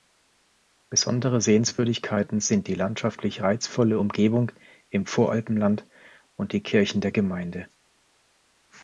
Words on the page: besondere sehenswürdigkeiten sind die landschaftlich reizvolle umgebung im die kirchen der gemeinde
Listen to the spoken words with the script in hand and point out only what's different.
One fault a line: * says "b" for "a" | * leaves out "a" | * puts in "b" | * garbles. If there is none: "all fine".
* puts in "voralpenland und"